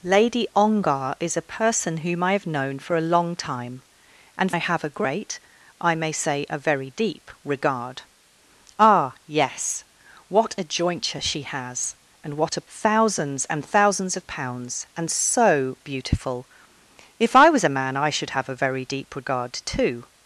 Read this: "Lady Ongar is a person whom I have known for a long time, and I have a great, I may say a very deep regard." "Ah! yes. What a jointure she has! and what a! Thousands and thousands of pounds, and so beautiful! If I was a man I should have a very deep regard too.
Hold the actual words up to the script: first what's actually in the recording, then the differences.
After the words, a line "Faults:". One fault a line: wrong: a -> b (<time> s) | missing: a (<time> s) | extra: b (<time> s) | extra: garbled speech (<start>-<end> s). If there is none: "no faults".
"Lady Ongar is a person whom I have known for a long time, and I have a great, I may say a very deep regard." "Ah! yes. What a jointure she has! and what a! Thousands and thousands of pounds, and so beautiful! If I was a man I should have a very deep regard too.
Faults:
no faults